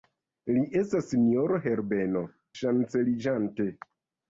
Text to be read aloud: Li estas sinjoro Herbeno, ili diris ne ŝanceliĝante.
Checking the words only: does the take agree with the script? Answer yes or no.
no